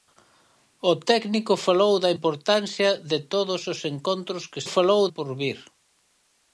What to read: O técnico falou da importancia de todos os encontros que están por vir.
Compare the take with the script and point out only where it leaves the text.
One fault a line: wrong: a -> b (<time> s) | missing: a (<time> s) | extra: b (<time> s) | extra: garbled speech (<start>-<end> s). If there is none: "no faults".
wrong: están -> falou (4.7 s)